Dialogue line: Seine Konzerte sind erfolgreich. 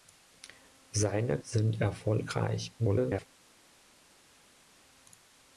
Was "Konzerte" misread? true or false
true